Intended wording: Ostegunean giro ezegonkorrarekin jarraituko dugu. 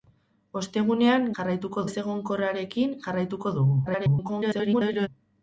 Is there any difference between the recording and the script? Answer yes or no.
yes